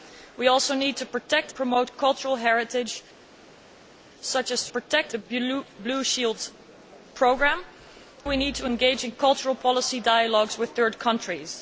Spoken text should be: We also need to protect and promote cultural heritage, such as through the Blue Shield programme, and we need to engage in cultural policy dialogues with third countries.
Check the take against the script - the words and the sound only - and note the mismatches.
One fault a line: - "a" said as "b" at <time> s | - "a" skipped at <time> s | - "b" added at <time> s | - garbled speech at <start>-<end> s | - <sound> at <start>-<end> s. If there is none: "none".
- "and" skipped at 1.5 s
- "through" said as "protect" at 4.7 s
- "and" skipped at 7.7 s